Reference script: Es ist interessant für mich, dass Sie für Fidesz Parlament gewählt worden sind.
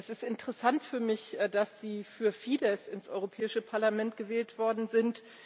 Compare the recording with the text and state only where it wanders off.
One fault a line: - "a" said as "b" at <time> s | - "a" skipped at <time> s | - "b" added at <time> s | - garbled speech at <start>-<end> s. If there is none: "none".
- "ins Europäische" added at 2.9 s